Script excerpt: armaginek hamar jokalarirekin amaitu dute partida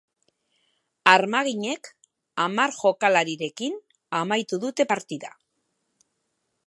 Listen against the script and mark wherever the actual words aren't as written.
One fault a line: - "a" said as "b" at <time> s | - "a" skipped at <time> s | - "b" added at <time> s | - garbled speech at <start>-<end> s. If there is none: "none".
none